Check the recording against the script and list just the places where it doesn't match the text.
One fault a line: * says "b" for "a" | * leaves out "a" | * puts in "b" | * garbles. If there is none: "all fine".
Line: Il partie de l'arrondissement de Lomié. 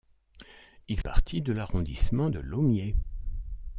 all fine